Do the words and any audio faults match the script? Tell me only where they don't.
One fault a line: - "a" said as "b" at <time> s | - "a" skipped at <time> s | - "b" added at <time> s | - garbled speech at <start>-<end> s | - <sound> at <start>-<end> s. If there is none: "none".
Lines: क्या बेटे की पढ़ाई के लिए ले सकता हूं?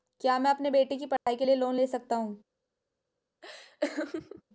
- "मैं अपने" added at 0.4 s
- dropout at 1.2-1.3 s
- "लोंन" added at 1.6 s
- laugh at 3.4-4.4 s